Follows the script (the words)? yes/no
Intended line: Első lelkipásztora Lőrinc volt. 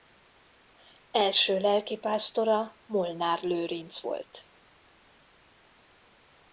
no